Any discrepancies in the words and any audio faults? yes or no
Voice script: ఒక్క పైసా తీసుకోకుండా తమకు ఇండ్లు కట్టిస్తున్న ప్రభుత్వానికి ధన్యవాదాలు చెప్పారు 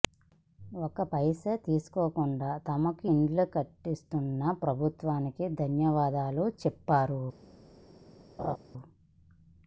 yes